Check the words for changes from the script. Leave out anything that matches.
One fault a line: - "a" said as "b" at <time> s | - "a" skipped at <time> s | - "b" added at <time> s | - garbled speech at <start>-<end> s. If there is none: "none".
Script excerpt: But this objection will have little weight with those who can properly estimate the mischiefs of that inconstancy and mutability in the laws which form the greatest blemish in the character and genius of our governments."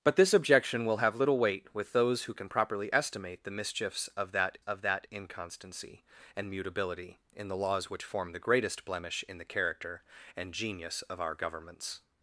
- "of that" added at 4.6 s